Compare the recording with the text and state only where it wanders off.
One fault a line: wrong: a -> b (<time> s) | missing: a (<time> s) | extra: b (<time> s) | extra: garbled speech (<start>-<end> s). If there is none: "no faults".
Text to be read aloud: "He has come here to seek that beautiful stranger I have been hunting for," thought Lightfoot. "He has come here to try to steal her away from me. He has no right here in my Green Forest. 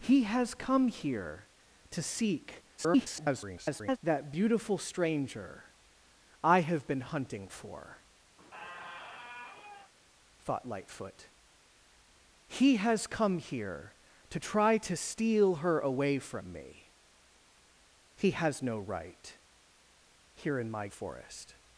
extra: garbled speech (2.8-4.0 s)
missing: Green (20.9 s)